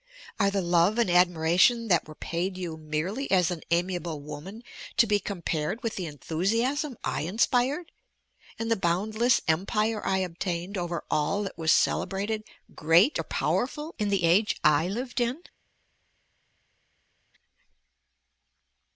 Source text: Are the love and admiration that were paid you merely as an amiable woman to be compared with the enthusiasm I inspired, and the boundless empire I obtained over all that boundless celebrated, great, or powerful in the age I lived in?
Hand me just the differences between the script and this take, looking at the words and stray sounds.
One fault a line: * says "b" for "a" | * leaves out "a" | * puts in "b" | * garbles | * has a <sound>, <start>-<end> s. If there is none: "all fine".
* says "was" for "boundless"